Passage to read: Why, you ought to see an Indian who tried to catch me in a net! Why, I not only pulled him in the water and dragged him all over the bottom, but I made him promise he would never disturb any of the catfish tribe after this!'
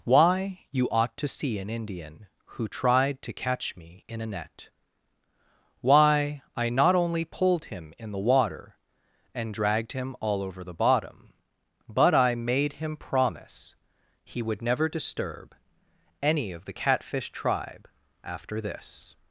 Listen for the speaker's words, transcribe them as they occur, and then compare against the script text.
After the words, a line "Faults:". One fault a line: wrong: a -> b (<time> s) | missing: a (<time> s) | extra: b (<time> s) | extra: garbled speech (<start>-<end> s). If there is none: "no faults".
Why, you ought to see an Indian who tried to catch me in a net! Why, I not only pulled him in the water and dragged him all over the bottom, but I made him promise he would never disturb any of the catfish tribe after this!'
Faults:
no faults